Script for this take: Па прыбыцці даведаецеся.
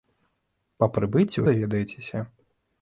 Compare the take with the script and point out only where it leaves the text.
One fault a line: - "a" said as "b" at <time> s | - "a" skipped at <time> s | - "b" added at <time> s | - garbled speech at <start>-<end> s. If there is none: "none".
none